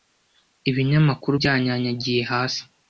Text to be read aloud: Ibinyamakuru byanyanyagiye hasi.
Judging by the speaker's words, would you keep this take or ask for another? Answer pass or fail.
pass